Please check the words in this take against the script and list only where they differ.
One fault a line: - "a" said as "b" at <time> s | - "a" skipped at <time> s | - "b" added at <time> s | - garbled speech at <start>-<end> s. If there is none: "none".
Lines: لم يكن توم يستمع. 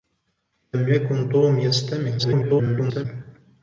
- garbled speech at 2.2-3.1 s